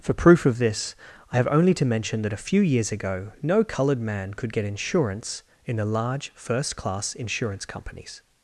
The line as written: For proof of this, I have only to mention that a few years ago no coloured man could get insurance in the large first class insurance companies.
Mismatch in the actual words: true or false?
false